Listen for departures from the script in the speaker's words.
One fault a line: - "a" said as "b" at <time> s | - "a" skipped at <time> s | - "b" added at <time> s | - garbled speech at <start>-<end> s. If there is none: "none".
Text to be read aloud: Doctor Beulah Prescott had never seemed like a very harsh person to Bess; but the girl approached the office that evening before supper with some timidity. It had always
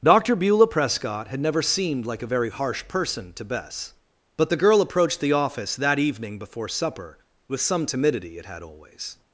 none